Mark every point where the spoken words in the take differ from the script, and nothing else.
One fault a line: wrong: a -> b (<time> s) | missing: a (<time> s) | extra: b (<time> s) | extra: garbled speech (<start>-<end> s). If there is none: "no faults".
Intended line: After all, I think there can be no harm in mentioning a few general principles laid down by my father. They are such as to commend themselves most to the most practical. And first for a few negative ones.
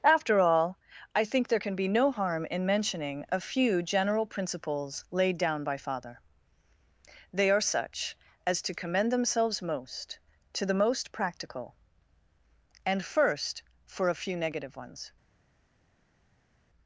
missing: my (5.8 s)